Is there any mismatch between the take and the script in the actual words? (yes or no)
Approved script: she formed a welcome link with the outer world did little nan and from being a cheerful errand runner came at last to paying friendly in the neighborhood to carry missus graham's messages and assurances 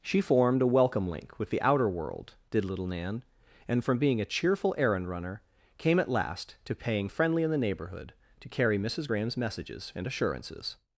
no